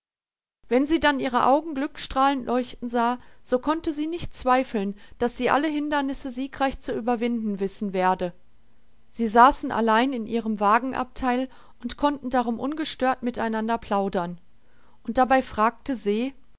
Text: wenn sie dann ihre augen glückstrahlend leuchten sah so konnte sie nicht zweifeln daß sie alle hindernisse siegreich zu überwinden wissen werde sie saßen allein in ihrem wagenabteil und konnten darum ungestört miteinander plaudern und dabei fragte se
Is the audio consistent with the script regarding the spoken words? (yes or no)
yes